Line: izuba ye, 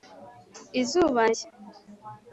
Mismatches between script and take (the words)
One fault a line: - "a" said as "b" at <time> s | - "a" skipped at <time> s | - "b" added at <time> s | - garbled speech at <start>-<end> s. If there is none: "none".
none